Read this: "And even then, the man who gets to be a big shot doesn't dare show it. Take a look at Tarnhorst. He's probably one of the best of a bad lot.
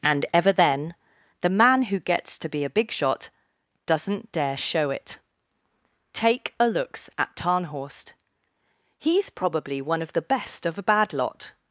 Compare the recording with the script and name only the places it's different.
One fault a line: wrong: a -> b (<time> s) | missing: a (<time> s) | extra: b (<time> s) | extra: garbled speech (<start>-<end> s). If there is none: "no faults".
wrong: even -> ever (0.3 s)
wrong: look -> looks (6.7 s)